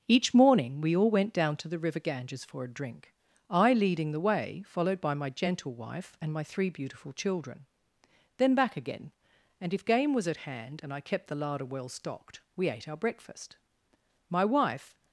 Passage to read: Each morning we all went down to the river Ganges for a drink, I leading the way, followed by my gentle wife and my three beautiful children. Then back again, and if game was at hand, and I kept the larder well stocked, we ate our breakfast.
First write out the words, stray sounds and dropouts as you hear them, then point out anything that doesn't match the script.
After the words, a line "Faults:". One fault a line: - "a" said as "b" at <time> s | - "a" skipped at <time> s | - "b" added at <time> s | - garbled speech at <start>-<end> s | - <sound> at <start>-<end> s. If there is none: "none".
Each morning we all went down to the river Ganges for a drink, I leading the way, followed by my gentle wife and my three beautiful children. Then back again, and if game was at hand, and I kept the larder well stocked, we ate our breakfast. My wife
Faults:
- "My wife" added at 14.3 s